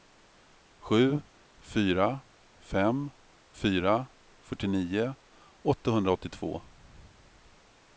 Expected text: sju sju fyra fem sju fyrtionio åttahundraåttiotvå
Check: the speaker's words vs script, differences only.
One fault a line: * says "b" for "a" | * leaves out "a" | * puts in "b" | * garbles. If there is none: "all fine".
* leaves out "sju"
* says "fyra" for "sju"